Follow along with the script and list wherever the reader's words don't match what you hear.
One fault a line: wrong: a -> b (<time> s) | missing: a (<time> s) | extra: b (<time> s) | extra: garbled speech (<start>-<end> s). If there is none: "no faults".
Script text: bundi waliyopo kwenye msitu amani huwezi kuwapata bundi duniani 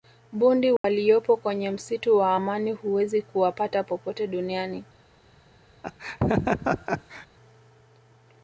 extra: wa (2.2 s)
wrong: bundi -> popote (3.8 s)